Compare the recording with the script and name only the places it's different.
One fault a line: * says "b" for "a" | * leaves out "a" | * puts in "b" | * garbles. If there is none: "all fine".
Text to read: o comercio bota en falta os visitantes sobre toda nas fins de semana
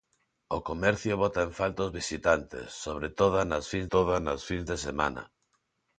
* puts in "toda nas fins"